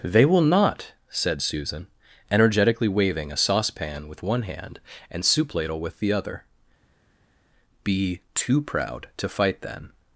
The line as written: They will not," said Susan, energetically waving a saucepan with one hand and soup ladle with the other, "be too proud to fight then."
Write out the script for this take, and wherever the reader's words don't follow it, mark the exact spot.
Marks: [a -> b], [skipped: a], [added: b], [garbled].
They will not," said Susan, energetically waving a saucepan with one hand and soup ladle with the other, "be too proud to fight then."